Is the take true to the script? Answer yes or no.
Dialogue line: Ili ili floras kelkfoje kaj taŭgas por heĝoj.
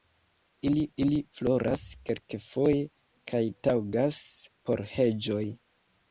yes